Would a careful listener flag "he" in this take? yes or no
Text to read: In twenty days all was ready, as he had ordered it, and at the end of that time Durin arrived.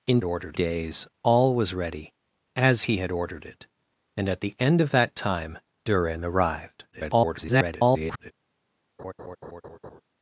no